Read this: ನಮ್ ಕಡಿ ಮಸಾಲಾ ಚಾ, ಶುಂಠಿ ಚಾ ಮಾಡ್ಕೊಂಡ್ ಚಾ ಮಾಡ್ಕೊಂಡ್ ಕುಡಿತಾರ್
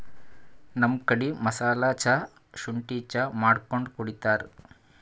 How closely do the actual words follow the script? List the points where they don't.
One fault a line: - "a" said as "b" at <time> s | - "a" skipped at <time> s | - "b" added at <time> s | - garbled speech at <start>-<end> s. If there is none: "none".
- "ಚಾ ಮಾಡ್ಕೊಂಡ್" skipped at 3.9 s